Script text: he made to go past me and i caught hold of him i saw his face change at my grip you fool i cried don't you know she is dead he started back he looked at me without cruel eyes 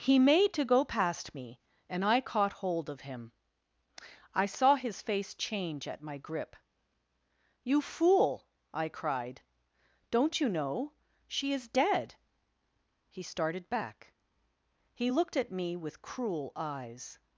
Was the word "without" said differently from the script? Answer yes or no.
yes